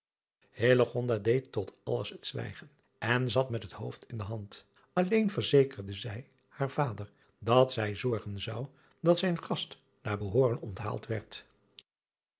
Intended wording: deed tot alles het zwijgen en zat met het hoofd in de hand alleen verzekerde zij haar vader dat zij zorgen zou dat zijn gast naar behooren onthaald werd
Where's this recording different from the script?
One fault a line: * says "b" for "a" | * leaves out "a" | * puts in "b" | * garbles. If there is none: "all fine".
all fine